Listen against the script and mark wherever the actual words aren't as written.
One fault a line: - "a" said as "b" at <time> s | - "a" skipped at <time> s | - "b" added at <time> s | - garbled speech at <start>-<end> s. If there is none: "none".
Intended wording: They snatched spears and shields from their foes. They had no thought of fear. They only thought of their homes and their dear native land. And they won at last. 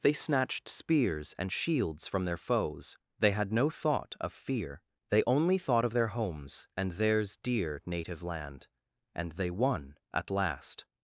- "their" said as "theirs" at 6.9 s